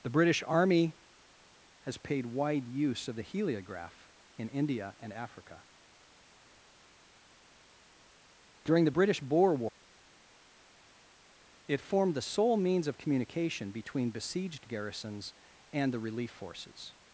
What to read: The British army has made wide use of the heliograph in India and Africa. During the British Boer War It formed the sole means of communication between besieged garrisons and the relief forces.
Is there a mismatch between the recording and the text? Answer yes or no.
yes